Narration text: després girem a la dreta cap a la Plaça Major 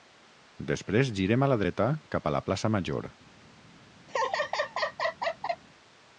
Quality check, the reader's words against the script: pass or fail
pass